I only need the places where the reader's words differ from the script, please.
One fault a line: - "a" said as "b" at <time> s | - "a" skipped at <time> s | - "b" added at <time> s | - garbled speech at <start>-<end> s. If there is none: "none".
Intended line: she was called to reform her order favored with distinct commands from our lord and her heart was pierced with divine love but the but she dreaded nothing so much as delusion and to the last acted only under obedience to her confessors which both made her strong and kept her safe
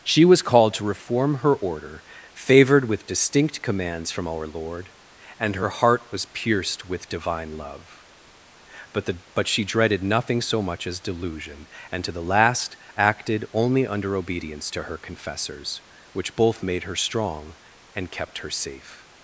none